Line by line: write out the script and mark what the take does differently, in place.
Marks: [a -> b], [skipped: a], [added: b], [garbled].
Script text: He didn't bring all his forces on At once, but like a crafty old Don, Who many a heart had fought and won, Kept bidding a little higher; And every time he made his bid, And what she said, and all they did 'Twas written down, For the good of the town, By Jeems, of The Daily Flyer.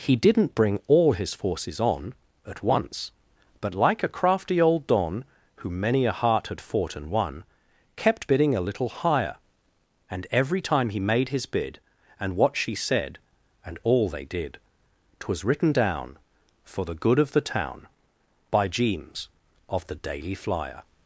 He didn't bring all his forces on At once, but like a crafty old Don, Who many a heart had fought and won, Kept bidding a little higher; And every time he made his bid, And what she said, and all they did 'Twas written down, For the good of the town, By Jeems, of The Daily Flyer.